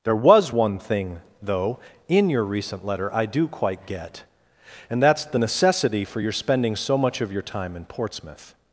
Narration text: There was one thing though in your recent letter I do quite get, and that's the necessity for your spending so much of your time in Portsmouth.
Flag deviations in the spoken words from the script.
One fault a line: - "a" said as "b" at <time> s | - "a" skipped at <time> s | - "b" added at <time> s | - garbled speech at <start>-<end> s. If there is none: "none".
none